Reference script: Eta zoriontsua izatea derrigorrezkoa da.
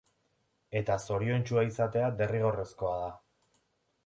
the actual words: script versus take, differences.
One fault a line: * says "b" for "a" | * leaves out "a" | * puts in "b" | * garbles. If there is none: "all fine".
all fine